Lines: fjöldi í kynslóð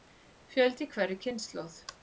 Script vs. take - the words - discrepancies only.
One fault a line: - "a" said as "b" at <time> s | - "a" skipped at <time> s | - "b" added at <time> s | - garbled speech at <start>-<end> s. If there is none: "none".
- "hverri" added at 0.9 s